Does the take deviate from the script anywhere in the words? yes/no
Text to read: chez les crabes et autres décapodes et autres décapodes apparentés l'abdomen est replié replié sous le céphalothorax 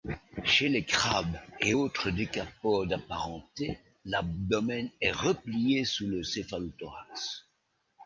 yes